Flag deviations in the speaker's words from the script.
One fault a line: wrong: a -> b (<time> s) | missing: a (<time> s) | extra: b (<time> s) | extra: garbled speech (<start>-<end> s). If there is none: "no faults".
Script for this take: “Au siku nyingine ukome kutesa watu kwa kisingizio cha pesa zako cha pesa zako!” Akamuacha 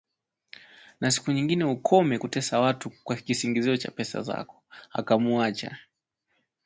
wrong: Au -> Na (1.0 s)
missing: cha pesa zako (4.6 s)